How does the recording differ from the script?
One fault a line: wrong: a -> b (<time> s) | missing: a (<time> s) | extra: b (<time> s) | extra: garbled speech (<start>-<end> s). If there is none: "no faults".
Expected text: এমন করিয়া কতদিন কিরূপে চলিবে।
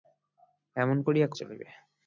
missing: কতদিন কিরূপে (1.3 s)